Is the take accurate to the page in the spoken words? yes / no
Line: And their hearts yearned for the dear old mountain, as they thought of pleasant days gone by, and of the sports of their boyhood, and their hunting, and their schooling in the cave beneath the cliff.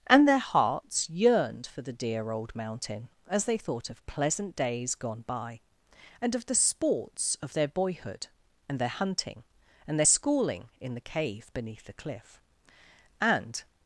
no